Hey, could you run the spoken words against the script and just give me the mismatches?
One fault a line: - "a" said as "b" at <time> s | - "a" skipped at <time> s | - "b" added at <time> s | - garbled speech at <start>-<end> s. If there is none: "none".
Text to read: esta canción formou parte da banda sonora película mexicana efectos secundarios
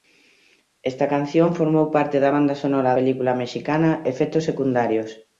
none